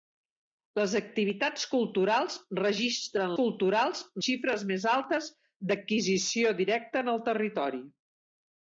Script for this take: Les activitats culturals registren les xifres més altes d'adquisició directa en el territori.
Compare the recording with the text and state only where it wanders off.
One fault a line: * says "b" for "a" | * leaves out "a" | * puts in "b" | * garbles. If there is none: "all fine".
* says "culturals" for "les"